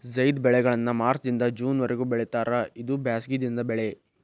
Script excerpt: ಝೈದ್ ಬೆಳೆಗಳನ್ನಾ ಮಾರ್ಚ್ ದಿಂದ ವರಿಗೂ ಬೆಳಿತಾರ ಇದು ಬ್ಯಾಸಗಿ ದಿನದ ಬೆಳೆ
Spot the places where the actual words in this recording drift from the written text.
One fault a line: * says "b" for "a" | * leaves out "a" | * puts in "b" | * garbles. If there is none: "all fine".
* puts in "ಜೂನ್"